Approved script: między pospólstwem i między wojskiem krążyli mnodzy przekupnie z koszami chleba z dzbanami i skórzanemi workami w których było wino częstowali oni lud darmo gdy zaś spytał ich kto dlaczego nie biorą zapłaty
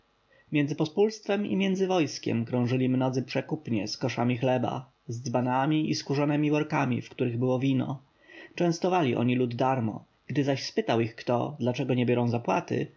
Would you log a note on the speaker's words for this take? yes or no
no